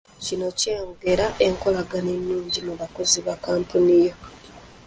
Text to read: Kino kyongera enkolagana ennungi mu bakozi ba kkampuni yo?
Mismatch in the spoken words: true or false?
false